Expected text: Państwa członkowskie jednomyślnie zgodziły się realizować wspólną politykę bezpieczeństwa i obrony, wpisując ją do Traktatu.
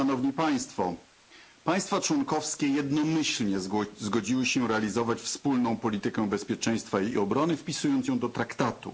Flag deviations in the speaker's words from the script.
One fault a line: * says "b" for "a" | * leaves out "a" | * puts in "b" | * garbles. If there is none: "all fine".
all fine